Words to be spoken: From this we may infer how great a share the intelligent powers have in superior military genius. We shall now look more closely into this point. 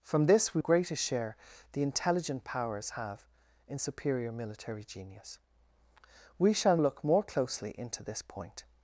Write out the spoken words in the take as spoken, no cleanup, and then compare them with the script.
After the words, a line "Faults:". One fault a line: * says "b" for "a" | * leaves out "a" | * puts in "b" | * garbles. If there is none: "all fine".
From this we great a share the intelligent powers have in superior military genius. We shall look more closely into this point.
Faults:
* leaves out "may infer how"
* leaves out "now"